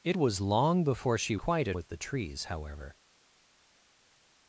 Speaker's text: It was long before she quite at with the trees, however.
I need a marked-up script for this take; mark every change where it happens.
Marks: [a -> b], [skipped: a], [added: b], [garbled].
It was long before she quite at with the trees, however.